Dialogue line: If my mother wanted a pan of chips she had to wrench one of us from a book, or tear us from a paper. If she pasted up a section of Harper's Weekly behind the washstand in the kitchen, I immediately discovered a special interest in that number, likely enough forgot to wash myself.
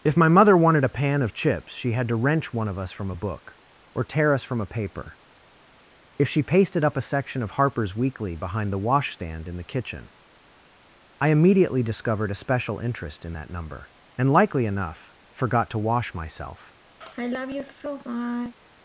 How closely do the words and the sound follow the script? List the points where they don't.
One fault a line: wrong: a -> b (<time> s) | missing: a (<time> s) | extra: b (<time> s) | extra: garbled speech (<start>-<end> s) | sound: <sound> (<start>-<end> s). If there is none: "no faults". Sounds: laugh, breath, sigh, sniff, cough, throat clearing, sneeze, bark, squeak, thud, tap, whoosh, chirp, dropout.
extra: and (14.2 s)
sound: sigh (17.0-18.5 s)